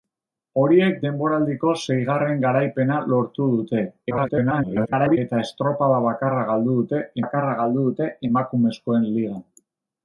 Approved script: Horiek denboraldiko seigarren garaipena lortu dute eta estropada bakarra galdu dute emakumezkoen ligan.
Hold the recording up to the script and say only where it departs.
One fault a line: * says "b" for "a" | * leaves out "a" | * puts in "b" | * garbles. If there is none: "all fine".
* garbles
* puts in "bakarra galdu dute"